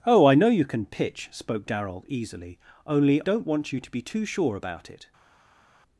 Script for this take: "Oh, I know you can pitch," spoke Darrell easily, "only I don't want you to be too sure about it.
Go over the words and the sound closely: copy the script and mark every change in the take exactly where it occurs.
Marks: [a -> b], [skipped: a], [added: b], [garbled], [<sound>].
"Oh, I know you can pitch," spoke Darrell easily, "only [skipped: I] don't want you to be too sure about it.